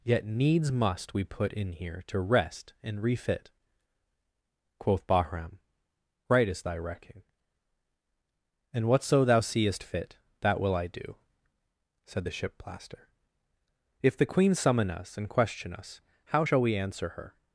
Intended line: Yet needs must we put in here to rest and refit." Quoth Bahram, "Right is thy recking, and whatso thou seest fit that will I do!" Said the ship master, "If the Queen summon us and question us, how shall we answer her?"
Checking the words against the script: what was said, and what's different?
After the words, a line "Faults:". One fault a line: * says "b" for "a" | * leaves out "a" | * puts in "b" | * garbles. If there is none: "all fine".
Yet needs must we put in here to rest and refit." Quoth Bahram, "Right is thy recking, and whatso thou seest fit that will I do!" Said the ship plaster, "If the Queen summon us and question us, how shall we answer her?"
Faults:
* says "plaster" for "master"